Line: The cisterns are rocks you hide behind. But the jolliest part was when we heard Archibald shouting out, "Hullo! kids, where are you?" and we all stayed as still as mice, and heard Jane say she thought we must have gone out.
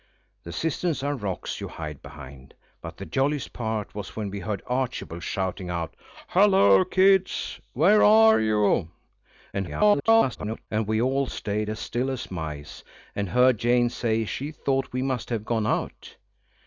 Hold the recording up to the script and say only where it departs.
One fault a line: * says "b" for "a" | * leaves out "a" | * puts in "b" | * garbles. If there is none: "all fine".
* garbles